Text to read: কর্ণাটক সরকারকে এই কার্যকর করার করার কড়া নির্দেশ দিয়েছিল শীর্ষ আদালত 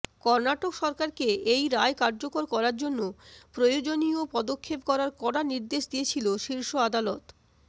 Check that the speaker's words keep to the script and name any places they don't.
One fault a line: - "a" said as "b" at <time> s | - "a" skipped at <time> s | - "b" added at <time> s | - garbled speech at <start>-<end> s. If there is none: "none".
- "রায়" added at 1.7 s
- "জন্য প্রয়োজনীয় পদক্ষেপ" added at 2.8 s